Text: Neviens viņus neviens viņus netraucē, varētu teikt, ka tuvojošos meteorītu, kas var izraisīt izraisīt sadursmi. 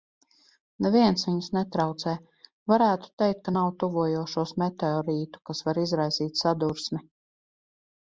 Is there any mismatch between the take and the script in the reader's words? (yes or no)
yes